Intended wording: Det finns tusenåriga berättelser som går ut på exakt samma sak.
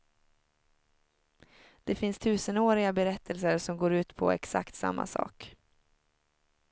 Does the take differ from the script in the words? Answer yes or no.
no